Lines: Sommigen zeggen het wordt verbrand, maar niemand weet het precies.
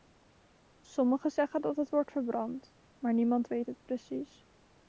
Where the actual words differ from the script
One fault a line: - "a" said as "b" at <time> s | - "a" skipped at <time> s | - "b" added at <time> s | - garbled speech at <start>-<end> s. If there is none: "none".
- "dat" added at 1.6 s